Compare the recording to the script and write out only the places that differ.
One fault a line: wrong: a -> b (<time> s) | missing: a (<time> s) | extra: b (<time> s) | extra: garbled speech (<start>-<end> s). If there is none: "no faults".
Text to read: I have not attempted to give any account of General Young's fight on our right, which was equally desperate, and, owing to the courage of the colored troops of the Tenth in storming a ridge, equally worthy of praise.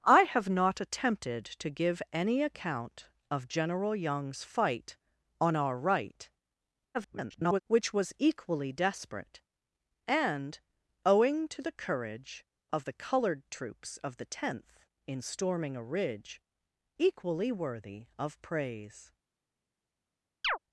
extra: garbled speech (6.9-7.6 s)